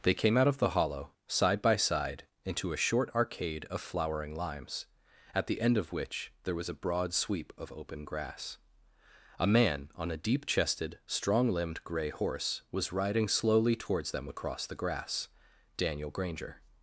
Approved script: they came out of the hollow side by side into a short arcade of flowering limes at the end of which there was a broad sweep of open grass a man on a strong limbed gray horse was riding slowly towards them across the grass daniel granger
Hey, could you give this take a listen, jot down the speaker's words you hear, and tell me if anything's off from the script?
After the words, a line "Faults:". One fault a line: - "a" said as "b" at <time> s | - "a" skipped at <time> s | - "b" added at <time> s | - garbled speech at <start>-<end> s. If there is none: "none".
they came out of the hollow side by side into a short arcade of flowering limes at the end of which there was a broad sweep of open grass a man on a deep chested strong limbed gray horse was riding slowly towards them across the grass daniel granger
Faults:
- "deep chested" added at 10.2 s